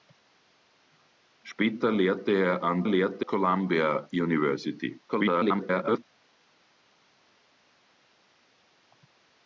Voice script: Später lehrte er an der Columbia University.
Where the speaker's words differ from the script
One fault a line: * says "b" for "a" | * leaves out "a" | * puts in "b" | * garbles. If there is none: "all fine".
* says "lehrte" for "der"
* garbles